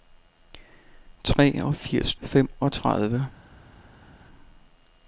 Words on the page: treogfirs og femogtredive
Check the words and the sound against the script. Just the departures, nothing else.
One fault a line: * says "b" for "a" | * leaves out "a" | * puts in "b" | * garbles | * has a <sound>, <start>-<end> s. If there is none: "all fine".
all fine